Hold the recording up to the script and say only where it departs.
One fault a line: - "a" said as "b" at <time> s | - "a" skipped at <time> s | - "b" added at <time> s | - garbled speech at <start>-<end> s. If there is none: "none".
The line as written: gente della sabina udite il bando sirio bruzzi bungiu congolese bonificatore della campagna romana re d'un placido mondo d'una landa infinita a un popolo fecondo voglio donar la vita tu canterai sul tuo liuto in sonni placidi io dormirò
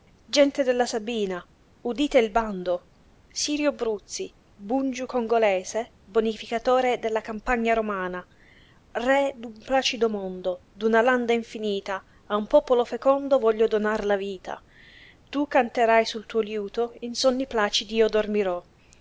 none